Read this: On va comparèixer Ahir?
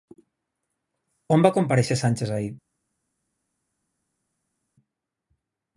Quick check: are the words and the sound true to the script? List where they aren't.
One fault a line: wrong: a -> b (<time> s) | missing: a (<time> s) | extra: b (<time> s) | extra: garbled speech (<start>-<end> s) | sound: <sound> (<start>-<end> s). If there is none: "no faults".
extra: Sánchez (2.0 s)